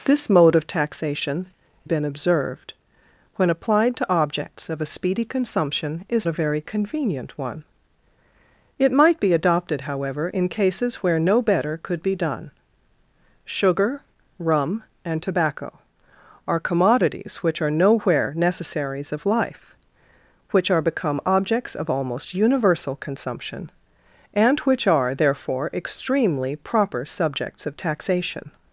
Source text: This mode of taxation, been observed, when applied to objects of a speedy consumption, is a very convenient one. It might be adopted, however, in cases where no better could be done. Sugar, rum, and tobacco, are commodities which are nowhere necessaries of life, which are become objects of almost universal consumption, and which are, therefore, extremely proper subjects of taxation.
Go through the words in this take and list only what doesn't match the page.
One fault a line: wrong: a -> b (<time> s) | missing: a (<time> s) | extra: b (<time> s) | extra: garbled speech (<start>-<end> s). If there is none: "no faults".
no faults